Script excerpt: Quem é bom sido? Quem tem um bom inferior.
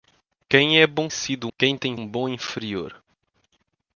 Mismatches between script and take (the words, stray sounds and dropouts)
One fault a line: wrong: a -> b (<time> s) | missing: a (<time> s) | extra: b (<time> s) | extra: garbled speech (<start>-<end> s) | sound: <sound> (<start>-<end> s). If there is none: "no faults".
no faults